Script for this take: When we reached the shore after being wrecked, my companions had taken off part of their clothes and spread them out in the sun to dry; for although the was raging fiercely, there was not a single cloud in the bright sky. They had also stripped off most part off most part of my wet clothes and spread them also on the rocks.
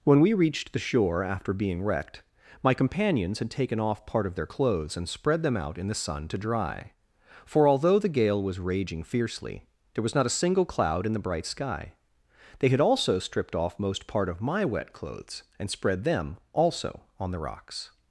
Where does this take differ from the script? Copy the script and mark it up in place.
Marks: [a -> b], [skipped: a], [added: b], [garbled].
When we reached the shore after being wrecked, my companions had taken off part of their clothes and spread them out in the sun to dry; for although the [added: gale] was raging fiercely, there was not a single cloud in the bright sky. They had also stripped off most part [skipped: off most part] of my wet clothes and spread them also on the rocks.